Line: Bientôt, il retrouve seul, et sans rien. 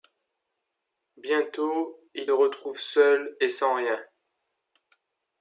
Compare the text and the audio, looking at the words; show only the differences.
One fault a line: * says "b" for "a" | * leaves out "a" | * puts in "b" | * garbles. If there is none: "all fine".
all fine